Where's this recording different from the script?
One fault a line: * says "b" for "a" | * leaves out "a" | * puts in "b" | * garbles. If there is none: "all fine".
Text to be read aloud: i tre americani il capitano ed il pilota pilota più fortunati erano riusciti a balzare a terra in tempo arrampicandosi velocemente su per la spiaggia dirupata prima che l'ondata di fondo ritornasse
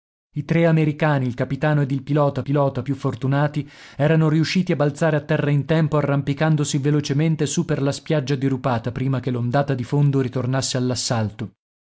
all fine